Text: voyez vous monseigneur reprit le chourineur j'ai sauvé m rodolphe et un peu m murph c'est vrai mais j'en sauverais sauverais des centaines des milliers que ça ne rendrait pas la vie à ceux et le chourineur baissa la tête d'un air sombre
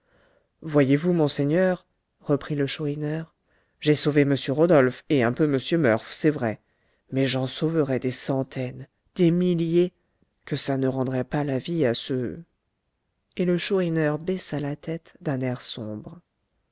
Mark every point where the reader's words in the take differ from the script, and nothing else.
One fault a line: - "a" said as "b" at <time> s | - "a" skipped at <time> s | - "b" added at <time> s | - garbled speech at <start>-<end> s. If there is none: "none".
- "sauverais" skipped at 8.0 s